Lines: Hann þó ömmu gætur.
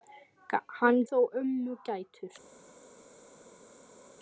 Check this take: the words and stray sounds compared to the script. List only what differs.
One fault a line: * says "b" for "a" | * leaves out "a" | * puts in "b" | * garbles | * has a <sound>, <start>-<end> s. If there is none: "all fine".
all fine